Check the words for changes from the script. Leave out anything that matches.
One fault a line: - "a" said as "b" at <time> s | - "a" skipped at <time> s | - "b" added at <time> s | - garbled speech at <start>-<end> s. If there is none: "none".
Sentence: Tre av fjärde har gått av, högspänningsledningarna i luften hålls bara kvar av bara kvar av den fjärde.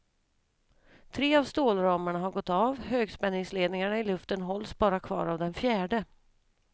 - "fjärde" said as "stålramarna" at 1.4 s
- "bara kvar av" skipped at 5.4 s